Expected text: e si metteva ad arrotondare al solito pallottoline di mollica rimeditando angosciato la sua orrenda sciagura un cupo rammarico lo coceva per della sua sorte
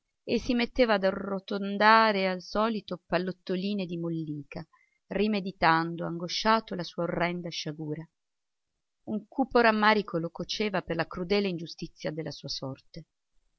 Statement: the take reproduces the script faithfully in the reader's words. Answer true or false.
false